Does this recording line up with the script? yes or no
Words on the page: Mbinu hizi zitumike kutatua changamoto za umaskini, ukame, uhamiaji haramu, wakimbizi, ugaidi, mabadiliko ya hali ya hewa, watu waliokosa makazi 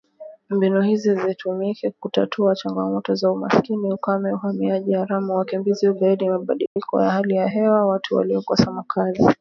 yes